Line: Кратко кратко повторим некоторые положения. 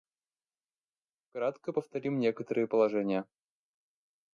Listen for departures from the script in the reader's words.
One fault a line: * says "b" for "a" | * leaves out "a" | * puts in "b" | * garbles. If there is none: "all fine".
* leaves out "кратко"